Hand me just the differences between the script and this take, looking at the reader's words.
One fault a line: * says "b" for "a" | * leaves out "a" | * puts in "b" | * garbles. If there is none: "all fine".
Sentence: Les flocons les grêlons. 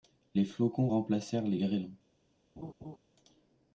* puts in "remplacèrent"